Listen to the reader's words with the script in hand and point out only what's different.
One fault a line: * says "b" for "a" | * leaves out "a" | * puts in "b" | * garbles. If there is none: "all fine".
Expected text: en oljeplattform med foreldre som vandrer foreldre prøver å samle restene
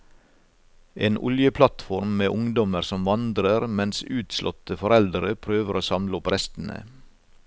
* says "ungdommer" for "foreldre"
* puts in "mens utslåtte"
* puts in "opp"